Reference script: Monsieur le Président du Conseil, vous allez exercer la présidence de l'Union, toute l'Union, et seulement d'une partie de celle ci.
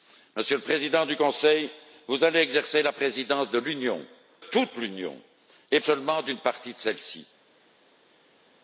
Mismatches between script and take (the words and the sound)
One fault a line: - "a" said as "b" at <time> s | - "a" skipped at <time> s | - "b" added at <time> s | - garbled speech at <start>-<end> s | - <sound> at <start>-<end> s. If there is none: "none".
none